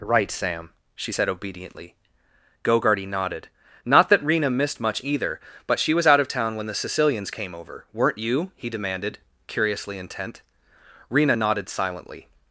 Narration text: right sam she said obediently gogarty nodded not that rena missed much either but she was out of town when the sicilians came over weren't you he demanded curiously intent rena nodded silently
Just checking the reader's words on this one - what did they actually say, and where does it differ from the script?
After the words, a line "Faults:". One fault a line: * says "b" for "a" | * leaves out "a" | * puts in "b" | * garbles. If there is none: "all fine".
right sam she said obediently gogarty nodded not that rena missed much either but she was out of town when the sicilians came over weren't you he demanded curiously intent rena nodded silently
Faults:
all fine